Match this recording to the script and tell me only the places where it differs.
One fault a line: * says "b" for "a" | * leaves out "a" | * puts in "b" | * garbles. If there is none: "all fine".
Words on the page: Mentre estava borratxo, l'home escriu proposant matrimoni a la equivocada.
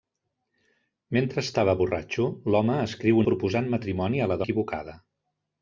all fine